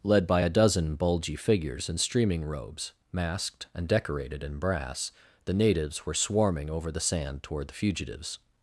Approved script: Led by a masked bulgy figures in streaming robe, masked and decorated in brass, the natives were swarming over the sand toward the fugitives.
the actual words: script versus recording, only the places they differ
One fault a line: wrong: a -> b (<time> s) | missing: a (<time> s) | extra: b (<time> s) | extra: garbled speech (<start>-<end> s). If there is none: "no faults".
wrong: masked -> dozen (0.5 s)
wrong: robe -> robes (2.4 s)